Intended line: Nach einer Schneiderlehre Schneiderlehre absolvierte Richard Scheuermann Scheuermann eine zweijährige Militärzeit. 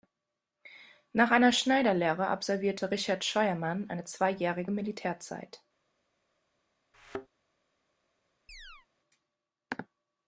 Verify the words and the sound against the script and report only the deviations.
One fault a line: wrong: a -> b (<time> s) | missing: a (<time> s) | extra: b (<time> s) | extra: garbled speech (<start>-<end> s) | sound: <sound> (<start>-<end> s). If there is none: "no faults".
missing: Schneiderlehre (2.2 s)
missing: Scheuermann (3.9 s)
sound: thud (6.9-7.3 s)
sound: chirp (8.5-8.9 s)